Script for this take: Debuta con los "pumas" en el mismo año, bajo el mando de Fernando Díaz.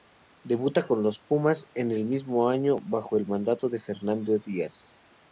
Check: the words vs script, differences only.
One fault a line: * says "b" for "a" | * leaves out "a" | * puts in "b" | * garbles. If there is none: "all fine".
all fine